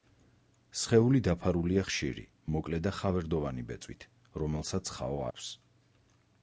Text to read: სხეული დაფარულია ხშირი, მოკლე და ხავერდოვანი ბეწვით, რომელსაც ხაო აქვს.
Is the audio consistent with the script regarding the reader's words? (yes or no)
yes